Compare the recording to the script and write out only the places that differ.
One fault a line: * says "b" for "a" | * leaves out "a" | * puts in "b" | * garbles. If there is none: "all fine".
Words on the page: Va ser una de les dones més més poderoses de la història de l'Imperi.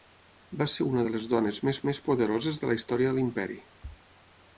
all fine